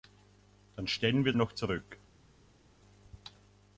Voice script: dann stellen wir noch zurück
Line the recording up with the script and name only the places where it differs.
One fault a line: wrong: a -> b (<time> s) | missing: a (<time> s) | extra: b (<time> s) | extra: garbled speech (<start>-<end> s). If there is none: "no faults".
no faults